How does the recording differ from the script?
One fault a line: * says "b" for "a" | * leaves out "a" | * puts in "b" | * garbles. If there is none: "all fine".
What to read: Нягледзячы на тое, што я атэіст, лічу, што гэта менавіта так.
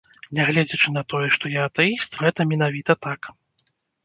* leaves out "лічу што"